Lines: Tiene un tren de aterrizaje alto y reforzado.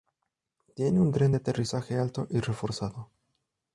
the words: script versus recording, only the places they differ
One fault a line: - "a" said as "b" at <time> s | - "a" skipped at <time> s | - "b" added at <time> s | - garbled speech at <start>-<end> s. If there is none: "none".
none